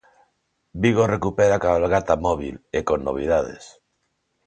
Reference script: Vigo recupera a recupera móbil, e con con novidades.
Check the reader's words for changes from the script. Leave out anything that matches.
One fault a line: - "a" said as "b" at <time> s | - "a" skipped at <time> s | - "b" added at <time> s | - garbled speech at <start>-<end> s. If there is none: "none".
- "recupera" said as "cabalgata" at 1.6 s
- "con" skipped at 3.0 s